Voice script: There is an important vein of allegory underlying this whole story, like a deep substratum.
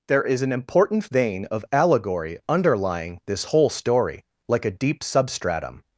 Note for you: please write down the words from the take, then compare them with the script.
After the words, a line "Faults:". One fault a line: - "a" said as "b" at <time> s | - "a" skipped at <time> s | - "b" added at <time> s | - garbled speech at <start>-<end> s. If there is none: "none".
There is an important vein of allegory underlying this whole story, like a deep substratum.
Faults:
none